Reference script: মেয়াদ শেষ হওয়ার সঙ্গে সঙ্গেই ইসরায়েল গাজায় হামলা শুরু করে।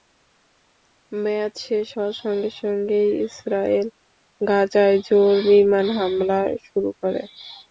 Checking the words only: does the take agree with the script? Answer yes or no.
no